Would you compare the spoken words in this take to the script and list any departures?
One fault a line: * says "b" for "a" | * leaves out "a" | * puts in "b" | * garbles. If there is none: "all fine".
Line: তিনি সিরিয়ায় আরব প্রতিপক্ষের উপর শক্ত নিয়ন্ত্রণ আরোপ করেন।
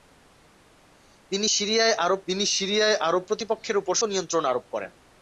* puts in "তিনি সিরিয়ায় আরব"
* leaves out "শক্ত"